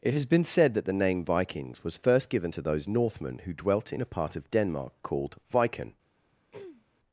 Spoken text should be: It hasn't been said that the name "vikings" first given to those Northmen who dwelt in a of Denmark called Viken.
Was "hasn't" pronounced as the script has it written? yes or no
no